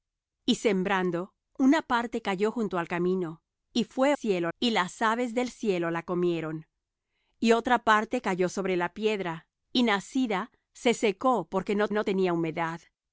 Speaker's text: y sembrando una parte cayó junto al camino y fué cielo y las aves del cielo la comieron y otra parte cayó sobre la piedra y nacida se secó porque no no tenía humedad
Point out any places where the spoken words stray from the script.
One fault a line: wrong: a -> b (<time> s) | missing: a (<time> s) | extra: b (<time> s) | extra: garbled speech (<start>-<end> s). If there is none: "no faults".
no faults